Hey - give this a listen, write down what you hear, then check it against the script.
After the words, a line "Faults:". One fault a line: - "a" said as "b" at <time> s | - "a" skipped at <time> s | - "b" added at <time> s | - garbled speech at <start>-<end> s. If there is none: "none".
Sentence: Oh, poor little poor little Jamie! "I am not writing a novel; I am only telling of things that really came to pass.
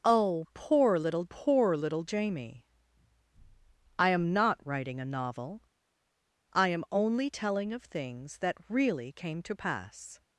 Oh, poor little poor little Jamie! "I am not writing a novel; I am only telling of things that really came to pass.
Faults:
none